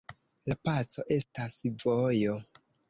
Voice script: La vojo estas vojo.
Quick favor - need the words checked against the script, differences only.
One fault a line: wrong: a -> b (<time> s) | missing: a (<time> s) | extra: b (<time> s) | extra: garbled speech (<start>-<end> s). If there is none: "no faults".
wrong: vojo -> paco (0.7 s)